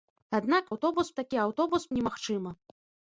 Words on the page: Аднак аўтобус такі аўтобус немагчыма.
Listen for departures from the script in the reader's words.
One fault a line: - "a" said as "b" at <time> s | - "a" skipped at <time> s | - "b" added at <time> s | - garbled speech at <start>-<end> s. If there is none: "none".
none